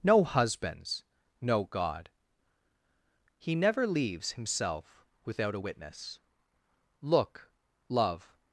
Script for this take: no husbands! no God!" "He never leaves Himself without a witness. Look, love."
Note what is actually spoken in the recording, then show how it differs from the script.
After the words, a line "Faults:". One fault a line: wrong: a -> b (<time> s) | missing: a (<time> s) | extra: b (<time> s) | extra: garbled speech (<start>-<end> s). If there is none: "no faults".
no husbands! no God!" "He never leaves Himself without a witness. Look, love."
Faults:
no faults